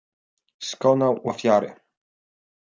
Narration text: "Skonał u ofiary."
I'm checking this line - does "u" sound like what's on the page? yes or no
yes